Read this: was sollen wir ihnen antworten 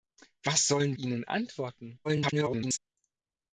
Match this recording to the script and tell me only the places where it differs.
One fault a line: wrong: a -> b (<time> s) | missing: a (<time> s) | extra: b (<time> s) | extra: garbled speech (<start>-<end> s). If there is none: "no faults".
missing: wir (1.0 s)
extra: garbled speech (2.0-2.8 s)